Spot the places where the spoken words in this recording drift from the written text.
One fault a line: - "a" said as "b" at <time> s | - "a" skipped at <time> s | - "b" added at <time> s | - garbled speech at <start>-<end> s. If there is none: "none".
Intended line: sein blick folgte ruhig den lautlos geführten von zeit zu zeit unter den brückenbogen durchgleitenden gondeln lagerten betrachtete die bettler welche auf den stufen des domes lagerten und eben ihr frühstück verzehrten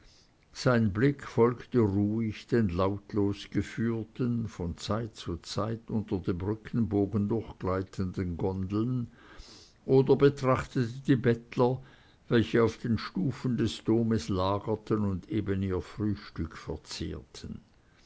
- "den" said as "dem" at 6.2 s
- "lagerten" said as "oder" at 9.8 s